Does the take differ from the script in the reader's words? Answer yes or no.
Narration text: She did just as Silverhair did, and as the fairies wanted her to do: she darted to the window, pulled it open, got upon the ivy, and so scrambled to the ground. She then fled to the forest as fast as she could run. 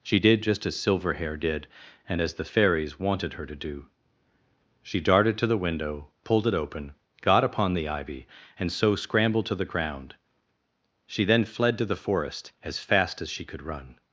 no